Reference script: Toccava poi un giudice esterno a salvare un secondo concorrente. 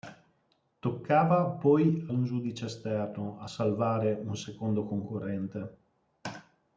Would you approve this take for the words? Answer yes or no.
yes